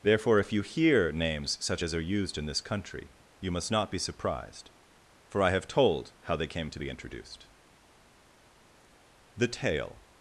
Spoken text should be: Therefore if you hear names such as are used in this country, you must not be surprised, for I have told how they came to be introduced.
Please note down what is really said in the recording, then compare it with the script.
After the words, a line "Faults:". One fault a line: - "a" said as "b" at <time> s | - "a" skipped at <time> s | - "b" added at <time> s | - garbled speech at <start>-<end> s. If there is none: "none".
Therefore if you hear names such as are used in this country, you must not be surprised, for I have told how they came to be introduced. The tale
Faults:
- "The tale" added at 9.4 s